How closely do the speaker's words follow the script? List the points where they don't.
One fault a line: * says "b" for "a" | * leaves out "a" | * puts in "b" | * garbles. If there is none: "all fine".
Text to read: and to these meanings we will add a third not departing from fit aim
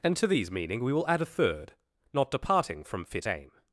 * says "meaning" for "meanings"